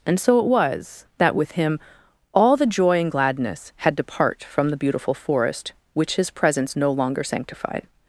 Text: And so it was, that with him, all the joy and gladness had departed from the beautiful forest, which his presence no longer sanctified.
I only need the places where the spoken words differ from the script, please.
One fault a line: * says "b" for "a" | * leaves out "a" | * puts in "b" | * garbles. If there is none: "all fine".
* says "depart" for "departed"